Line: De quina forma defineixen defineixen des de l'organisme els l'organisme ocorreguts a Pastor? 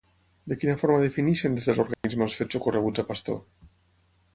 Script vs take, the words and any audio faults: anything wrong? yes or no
yes